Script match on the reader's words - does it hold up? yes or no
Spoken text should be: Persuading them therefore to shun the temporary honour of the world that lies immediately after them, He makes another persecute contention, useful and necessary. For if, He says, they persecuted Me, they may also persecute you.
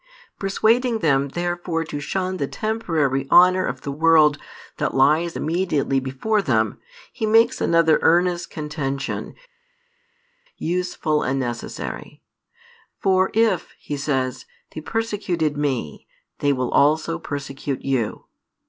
no